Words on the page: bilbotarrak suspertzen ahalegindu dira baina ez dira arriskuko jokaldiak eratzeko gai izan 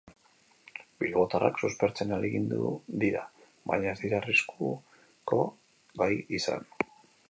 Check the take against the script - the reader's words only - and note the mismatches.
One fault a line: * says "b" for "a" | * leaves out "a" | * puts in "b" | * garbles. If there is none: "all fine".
* leaves out "jokaldiak eratzeko"